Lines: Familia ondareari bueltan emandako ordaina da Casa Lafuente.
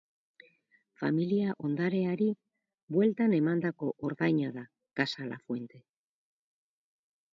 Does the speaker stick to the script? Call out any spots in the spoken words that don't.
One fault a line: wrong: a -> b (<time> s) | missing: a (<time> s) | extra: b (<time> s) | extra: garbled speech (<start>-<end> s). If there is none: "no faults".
no faults